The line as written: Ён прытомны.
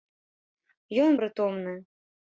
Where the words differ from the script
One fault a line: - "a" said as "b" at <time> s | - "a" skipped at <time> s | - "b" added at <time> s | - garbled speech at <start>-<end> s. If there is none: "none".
none